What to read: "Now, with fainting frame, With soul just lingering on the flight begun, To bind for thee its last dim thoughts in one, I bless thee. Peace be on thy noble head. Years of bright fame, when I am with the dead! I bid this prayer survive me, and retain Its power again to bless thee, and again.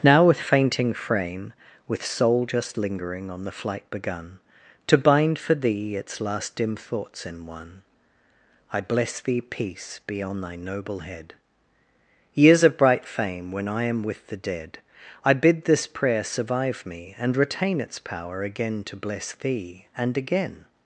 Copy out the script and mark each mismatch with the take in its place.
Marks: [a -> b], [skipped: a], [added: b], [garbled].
"Now, with fainting frame, With soul just lingering on the flight begun, To bind for thee its last dim thoughts in one, I bless thee. Peace be on thy noble head. Years of bright fame, when I am with the dead! I bid this prayer survive me, and retain Its power again to bless thee, and again.